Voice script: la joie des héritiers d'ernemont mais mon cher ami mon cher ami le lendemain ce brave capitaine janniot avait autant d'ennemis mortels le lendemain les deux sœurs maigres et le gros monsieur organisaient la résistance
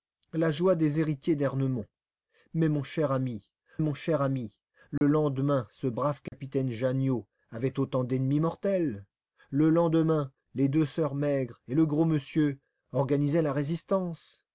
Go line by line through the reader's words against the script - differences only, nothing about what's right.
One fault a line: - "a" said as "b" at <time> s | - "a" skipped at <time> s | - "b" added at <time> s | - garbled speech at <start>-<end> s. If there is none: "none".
none